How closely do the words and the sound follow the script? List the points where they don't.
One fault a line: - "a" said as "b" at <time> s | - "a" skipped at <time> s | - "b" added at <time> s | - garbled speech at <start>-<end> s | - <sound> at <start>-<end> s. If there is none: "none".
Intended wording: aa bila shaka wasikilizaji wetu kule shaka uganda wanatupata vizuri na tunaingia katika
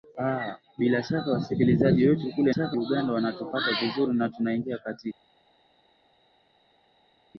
none